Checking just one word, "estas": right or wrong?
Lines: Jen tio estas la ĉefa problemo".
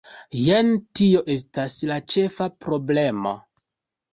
right